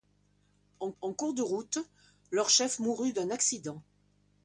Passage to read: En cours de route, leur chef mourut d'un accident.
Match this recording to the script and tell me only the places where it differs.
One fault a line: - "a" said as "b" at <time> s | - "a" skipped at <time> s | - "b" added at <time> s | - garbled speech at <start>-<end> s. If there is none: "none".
- "en" added at 1.0 s